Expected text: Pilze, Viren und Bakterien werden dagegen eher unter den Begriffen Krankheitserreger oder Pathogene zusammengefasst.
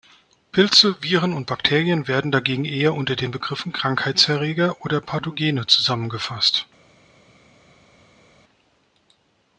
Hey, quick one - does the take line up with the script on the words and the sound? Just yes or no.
yes